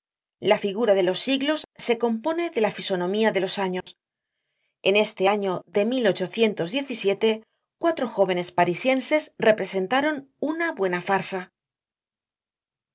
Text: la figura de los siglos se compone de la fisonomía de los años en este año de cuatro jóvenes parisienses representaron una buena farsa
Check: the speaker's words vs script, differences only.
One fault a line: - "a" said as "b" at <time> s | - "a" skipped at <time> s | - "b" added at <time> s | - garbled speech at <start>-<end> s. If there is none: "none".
none